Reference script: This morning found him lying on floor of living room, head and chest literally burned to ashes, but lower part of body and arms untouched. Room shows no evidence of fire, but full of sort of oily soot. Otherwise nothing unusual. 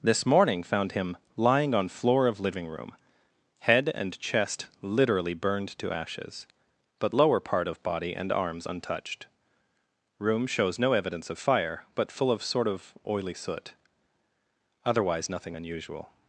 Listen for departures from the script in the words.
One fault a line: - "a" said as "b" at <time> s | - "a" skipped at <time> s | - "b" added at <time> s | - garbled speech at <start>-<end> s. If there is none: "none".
none